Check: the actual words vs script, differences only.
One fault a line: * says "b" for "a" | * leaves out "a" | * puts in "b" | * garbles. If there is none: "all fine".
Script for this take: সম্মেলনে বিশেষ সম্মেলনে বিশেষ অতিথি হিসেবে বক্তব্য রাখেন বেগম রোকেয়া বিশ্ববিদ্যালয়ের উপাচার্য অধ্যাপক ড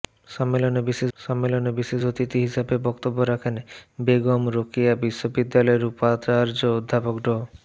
all fine